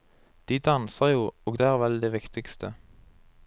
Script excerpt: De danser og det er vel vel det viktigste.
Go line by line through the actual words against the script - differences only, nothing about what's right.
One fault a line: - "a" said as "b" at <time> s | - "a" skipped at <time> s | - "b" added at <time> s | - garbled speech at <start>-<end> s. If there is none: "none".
- "jo" added at 1.1 s
- "vel" skipped at 2.0 s